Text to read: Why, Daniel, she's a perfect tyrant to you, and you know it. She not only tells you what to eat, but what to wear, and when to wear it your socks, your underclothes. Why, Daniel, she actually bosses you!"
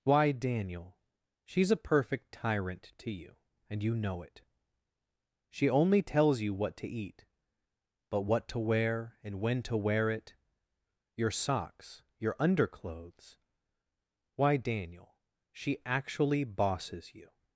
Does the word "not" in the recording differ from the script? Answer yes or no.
yes